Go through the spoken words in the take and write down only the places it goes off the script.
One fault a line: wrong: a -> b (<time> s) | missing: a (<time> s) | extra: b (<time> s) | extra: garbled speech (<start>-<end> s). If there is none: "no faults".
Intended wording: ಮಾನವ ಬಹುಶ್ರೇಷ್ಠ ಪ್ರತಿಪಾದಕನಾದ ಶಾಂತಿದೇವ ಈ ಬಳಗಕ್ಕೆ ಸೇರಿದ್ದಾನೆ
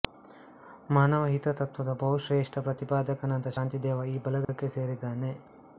extra: ಹಿತತತ್ತ್ವದ (1.2 s)